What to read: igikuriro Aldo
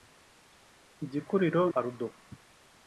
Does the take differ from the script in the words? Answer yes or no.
no